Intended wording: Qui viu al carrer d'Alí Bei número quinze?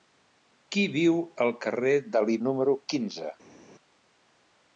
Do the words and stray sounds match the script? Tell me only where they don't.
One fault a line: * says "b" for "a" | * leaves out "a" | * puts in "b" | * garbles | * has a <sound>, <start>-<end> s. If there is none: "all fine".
* leaves out "Bei"